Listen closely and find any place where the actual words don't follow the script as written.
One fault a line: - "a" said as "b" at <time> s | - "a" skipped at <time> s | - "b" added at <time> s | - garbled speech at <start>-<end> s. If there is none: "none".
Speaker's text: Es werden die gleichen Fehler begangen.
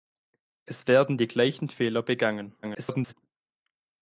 - garbled speech at 2.6-3.1 s